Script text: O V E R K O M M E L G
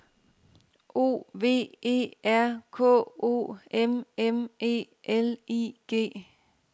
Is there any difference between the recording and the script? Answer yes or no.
yes